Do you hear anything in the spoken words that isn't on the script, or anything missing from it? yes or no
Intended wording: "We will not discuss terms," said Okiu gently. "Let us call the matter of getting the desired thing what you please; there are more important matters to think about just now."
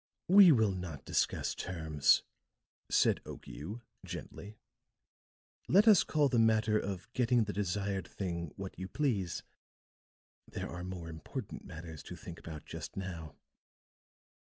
no